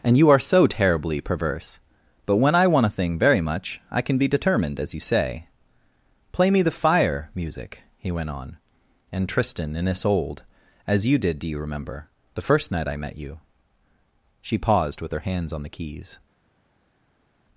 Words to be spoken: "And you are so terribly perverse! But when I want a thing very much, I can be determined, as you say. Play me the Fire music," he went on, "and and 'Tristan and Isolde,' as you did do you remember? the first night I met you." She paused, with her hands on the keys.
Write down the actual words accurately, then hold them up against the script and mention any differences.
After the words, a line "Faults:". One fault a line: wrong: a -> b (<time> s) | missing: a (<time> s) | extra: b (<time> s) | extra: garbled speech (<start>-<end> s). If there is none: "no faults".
"And you are so terribly perverse! But when I want a thing very much, I can be determined, as you say. Play me the Fire music," he went on, "and 'Tristan and Isolde,' as you did do you remember? the first night I met you." She paused, with her hands on the keys.
Faults:
missing: and (9.3 s)